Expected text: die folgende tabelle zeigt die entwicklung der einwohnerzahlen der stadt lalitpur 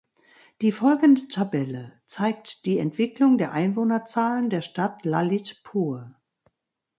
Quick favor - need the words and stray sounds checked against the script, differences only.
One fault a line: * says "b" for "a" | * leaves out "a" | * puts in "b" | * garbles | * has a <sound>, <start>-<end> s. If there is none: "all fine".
all fine